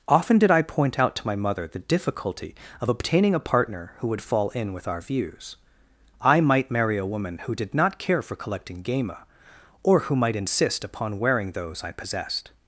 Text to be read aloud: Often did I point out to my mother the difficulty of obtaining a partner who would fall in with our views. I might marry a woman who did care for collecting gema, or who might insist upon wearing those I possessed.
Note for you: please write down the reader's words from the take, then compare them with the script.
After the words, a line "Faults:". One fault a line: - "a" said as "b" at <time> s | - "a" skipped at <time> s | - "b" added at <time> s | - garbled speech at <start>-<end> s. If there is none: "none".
Often did I point out to my mother the difficulty of obtaining a partner who would fall in with our views. I might marry a woman who did not care for collecting gema, or who might insist upon wearing those I possessed.
Faults:
- "not" added at 7.7 s